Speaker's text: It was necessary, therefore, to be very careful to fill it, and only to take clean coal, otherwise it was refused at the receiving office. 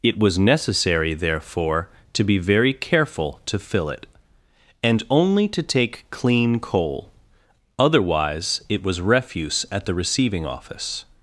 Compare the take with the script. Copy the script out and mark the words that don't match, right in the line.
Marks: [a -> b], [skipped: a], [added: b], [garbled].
It was necessary, therefore, to be very careful to fill it, and only to take clean coal, otherwise it was [refused -> refuse] at the receiving office.